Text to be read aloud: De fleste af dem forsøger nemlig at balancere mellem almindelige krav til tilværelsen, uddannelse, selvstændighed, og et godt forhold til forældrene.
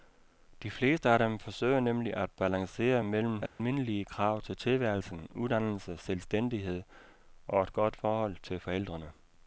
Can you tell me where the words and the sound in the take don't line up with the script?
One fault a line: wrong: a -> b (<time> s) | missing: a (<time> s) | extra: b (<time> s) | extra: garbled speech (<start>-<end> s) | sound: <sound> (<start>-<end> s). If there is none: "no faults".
sound: dropout (3.5-3.6 s)